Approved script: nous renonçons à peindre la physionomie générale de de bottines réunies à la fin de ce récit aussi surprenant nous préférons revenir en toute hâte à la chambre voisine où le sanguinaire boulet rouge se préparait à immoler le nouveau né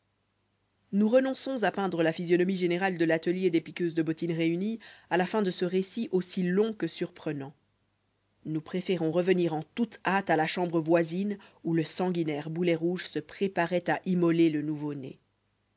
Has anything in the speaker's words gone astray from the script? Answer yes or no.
yes